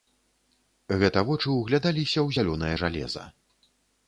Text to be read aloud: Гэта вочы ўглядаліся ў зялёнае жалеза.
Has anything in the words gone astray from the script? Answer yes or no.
no